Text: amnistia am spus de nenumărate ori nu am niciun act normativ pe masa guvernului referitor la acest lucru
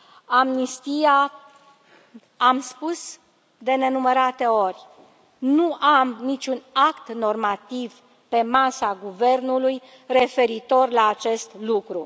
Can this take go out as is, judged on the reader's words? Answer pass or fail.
pass